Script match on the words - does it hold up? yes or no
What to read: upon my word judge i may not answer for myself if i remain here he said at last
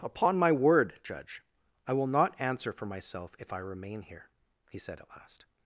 no